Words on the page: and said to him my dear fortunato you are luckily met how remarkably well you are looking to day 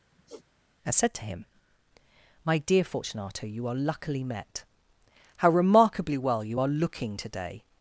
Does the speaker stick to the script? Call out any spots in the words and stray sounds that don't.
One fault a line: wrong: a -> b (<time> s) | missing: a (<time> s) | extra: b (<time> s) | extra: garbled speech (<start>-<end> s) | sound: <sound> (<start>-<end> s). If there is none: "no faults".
sound: sigh (0.1-0.4 s)